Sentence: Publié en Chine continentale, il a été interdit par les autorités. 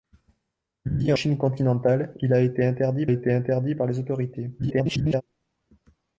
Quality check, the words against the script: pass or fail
fail